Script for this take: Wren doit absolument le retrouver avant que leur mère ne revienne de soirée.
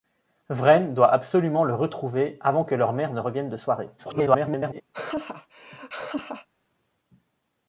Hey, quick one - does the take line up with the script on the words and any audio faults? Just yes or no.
no